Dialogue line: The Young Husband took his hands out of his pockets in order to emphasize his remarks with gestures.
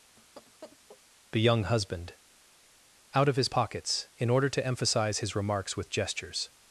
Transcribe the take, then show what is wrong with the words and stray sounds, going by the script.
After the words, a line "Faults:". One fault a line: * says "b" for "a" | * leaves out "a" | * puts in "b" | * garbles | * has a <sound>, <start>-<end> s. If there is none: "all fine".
The Young Husband out of his pockets in order to emphasize his remarks with gestures.
Faults:
* has a laugh, 0.2-1.0 s
* leaves out "took his hands"